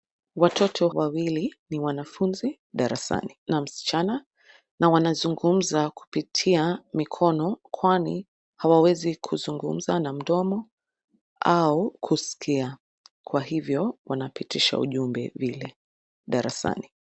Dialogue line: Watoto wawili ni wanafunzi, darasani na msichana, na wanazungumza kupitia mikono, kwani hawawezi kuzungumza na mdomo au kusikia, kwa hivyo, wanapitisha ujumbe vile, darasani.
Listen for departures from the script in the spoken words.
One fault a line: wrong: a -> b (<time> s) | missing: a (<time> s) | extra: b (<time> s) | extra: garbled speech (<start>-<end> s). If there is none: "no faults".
no faults